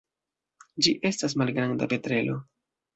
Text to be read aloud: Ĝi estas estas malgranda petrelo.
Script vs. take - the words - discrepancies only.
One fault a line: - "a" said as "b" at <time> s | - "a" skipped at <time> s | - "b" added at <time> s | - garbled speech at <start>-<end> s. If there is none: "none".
- "estas" skipped at 1.4 s